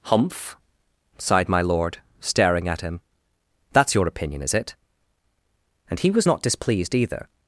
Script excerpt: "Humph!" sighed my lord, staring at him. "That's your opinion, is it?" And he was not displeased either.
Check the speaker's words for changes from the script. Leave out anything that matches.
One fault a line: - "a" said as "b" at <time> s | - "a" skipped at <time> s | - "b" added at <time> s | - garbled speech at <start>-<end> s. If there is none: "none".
none